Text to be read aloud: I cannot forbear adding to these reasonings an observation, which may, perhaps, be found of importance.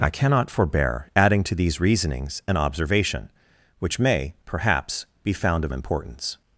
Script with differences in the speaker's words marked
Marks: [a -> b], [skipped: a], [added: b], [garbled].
I cannot forbear adding to these reasonings an observation, which may, perhaps, be found of importance.